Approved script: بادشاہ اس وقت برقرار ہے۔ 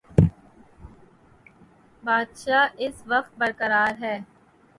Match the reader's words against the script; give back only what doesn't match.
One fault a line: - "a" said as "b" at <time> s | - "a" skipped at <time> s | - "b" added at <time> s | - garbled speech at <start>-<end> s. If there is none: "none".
none